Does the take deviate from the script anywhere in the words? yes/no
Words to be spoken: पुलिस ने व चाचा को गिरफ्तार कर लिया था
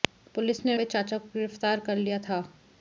no